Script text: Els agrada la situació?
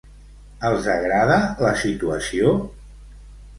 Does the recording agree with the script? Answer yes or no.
yes